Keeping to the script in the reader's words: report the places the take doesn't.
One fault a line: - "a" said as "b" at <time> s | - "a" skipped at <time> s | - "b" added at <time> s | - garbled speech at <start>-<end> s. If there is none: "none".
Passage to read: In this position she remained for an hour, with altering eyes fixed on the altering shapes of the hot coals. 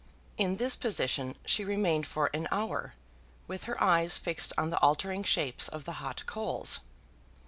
- "altering" said as "her" at 3.6 s